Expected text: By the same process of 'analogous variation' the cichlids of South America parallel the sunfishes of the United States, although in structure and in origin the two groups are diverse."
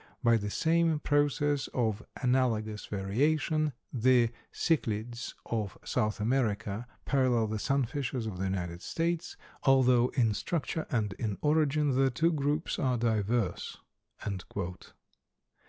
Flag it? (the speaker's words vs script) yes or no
no